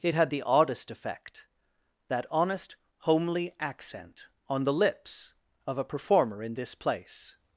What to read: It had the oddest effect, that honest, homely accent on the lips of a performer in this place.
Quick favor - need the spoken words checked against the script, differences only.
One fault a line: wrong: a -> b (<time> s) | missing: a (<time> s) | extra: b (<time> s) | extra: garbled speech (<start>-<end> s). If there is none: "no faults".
no faults